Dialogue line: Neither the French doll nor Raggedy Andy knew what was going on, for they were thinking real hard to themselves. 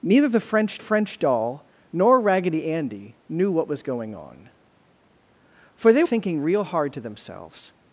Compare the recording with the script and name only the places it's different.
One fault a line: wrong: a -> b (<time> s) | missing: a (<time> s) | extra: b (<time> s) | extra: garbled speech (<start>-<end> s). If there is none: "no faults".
extra: French (0.8 s)
missing: were (6.0 s)